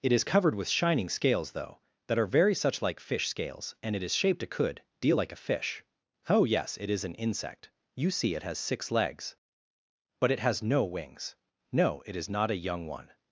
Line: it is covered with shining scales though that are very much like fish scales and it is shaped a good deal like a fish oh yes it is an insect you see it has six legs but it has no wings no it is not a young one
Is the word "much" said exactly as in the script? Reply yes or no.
no